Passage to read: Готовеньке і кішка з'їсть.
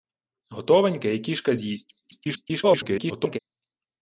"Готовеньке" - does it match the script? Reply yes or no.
yes